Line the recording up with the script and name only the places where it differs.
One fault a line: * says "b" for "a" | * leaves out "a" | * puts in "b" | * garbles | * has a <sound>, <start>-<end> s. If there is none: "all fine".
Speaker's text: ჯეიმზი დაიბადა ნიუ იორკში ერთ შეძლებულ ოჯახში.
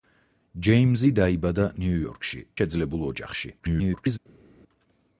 * leaves out "ერთ"
* garbles